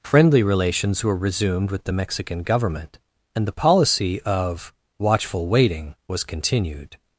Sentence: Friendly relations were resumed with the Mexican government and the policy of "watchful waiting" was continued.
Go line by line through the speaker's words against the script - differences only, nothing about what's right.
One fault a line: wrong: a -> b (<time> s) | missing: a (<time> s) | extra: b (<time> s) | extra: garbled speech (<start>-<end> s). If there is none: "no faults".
no faults